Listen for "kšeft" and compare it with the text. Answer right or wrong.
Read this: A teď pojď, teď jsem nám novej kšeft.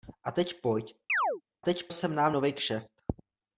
right